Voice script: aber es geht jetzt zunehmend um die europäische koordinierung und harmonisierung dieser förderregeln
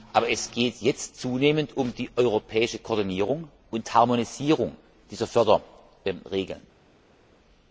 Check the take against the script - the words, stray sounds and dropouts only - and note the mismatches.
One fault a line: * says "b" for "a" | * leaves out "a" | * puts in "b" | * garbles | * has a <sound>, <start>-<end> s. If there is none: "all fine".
all fine